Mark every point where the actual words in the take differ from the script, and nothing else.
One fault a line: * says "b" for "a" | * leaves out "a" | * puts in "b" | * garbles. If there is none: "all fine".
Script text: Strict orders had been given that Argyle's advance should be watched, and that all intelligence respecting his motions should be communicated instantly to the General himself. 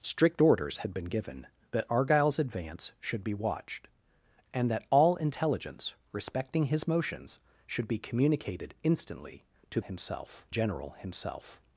* says "himself" for "the"